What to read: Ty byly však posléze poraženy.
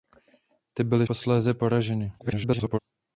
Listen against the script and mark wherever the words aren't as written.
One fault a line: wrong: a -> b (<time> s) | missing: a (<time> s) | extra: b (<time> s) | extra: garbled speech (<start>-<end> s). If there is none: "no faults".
missing: však (1.1 s)
extra: garbled speech (2.2-2.8 s)